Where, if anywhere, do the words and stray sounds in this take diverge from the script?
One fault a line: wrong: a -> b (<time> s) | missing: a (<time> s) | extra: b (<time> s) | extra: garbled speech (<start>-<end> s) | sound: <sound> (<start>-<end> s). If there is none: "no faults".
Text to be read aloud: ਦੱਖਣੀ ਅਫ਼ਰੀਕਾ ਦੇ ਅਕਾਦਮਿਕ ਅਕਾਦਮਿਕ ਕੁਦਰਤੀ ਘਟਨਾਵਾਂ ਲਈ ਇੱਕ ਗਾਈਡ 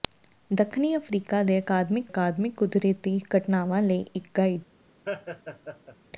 sound: laugh (5.1-6.0 s)